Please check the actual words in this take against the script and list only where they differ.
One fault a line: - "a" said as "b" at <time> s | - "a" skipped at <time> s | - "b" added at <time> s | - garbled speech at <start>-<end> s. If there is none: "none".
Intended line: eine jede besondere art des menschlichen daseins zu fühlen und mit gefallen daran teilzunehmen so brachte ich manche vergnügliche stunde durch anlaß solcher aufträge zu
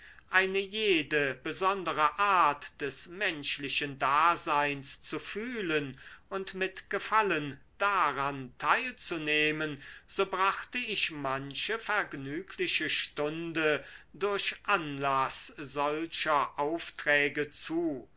none